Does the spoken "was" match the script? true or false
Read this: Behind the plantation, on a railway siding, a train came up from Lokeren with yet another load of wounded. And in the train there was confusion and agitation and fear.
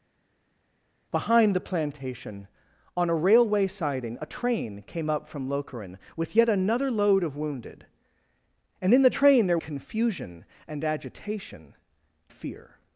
false